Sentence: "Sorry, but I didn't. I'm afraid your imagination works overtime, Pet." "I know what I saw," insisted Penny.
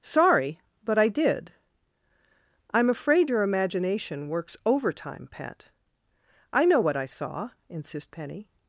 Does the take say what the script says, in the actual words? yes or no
no